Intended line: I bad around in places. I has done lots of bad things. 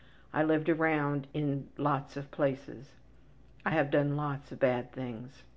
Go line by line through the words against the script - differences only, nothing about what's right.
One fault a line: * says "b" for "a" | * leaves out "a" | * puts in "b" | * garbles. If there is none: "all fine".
* says "lived" for "bad"
* puts in "lots of"
* says "have" for "has"